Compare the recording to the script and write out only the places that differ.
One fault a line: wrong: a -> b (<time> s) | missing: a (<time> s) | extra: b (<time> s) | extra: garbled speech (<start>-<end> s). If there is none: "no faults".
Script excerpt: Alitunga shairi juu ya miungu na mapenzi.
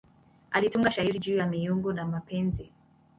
no faults